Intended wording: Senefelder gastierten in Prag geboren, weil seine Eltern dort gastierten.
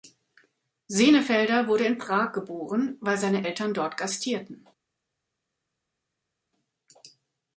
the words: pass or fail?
fail